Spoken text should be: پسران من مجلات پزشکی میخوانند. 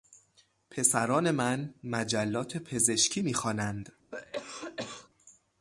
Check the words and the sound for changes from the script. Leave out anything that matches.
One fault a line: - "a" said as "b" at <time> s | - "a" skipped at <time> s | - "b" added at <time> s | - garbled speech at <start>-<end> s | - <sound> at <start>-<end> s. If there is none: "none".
- cough at 4.1-5.1 s